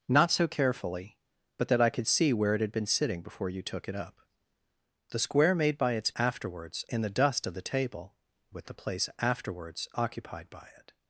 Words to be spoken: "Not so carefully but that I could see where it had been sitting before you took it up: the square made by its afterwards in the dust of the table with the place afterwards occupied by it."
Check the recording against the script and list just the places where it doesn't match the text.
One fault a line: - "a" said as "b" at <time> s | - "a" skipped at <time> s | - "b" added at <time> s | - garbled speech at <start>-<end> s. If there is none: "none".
none